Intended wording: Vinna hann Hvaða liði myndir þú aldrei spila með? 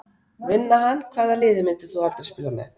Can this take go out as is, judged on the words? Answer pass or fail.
pass